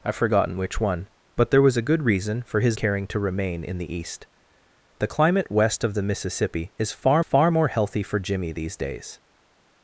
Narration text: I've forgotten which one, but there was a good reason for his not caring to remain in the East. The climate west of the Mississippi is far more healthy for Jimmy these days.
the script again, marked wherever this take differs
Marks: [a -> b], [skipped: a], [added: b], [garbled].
I've forgotten which one, but there was a good reason for his [skipped: not] caring to remain in the East. The climate west of the Mississippi is far [added: far] more healthy for Jimmy these days.